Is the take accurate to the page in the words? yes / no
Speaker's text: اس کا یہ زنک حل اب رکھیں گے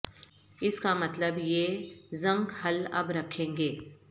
no